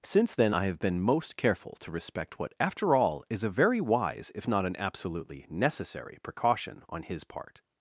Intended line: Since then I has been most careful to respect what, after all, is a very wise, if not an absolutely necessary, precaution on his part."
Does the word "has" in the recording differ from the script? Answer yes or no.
yes